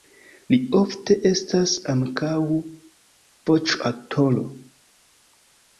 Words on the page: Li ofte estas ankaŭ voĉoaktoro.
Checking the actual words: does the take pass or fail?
pass